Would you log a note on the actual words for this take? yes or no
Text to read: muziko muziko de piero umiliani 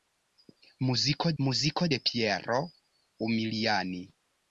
no